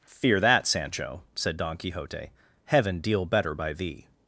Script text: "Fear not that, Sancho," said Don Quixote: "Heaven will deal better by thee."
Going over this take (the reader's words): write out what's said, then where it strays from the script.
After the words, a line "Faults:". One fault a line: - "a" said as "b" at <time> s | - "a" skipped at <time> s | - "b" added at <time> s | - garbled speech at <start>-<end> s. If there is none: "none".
"Fear that, Sancho," said Don Quixote: "Heaven deal better by thee."
Faults:
- "not" skipped at 0.4 s
- "will" skipped at 3.0 s